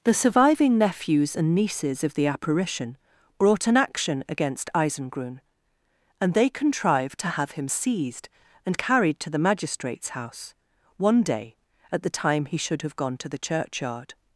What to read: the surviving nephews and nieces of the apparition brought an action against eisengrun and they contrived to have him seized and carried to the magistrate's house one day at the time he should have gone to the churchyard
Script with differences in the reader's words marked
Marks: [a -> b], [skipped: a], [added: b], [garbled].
the surviving nephews and nieces of the apparition brought an action against eisengrun and they contrived to have him seized and carried to the magistrate's house one day at the time he should have gone to the churchyard